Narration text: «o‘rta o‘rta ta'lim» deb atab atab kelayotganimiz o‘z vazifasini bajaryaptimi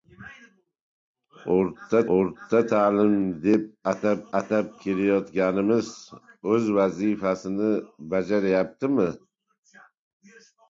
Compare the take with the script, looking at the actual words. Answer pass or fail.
pass